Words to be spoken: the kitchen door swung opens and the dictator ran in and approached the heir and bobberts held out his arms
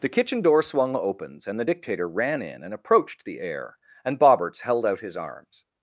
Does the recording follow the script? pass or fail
pass